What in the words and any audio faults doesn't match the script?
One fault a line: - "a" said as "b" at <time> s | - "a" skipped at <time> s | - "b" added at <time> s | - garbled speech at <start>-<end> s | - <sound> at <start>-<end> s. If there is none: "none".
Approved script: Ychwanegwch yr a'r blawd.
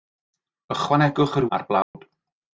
- dropout at 1.8-1.9 s